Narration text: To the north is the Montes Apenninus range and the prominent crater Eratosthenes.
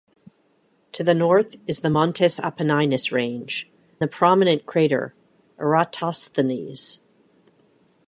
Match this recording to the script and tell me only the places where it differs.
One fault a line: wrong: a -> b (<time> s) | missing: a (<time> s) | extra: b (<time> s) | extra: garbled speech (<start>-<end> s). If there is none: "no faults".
missing: and (3.7 s)